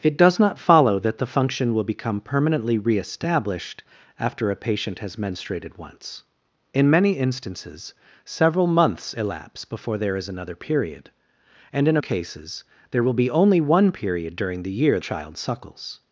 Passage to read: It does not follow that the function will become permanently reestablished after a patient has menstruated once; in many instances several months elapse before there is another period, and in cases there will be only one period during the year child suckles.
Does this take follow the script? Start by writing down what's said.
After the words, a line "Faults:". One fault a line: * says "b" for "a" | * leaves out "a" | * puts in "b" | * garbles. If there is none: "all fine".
It does not follow that the function will become permanently reestablished after a patient has menstruated once; in many instances several months elapse before there is another period, and in cases there will be only one period during the year child suckles.
Faults:
all fine